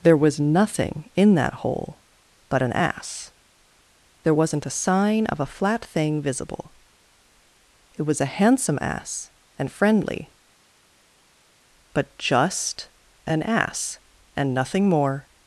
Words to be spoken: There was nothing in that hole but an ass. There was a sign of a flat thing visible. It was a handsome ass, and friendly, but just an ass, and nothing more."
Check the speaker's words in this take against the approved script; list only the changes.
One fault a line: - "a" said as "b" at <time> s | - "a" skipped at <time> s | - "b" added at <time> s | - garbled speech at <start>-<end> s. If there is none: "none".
- "was" said as "wasn't" at 4.3 s